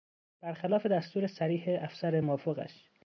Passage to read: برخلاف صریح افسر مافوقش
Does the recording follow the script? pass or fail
fail